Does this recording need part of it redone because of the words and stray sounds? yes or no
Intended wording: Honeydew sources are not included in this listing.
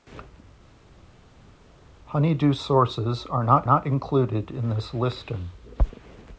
yes